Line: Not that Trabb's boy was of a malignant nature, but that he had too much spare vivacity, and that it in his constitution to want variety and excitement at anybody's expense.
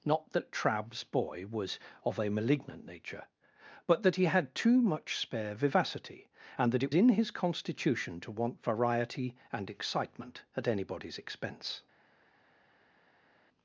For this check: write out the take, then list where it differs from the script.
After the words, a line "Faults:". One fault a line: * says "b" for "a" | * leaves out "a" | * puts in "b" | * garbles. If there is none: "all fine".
Not that Trabb's boy was of a malignant nature, but that he had too much spare vivacity, and that it in his constitution to want variety and excitement at anybody's expense.
Faults:
all fine